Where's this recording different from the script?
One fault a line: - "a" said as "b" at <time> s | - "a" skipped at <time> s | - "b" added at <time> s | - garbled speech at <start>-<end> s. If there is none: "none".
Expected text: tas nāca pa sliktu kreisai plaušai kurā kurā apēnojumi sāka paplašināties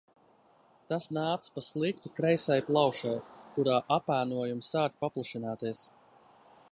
- "kurā" skipped at 3.8 s